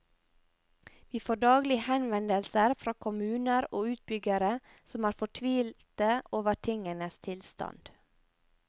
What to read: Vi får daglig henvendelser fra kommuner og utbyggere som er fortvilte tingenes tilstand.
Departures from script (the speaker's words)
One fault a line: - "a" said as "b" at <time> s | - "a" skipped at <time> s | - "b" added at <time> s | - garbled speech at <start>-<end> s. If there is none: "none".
- "over" added at 6.4 s